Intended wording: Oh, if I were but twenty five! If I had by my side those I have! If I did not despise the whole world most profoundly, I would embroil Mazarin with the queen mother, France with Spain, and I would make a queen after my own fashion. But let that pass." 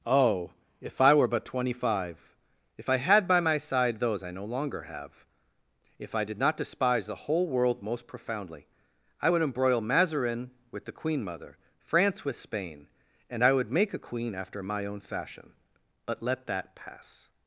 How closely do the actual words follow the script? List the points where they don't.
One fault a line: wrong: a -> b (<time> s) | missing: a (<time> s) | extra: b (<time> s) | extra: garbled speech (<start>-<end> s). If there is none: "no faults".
extra: no longer (4.3 s)